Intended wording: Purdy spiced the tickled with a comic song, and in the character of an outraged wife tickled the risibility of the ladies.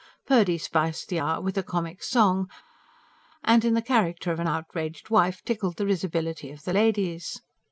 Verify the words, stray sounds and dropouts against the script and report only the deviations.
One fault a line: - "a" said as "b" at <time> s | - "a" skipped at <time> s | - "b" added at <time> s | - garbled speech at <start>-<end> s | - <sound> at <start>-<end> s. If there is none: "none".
- "tickled" said as "hour" at 1.2 s